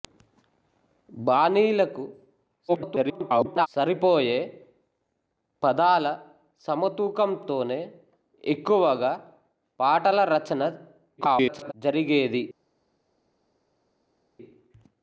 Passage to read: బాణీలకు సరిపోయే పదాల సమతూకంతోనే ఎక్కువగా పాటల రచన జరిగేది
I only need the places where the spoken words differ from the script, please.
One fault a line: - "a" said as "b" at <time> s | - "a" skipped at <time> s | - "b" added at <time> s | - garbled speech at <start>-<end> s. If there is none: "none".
- garbled speech at 2.7-3.7 s
- garbled speech at 11.2-11.7 s